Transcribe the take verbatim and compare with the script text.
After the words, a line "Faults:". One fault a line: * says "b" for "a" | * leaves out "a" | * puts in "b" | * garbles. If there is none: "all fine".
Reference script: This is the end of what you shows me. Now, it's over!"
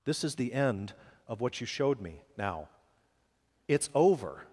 This is the end of what you showed me. Now, it's over!"
Faults:
* says "showed" for "shows"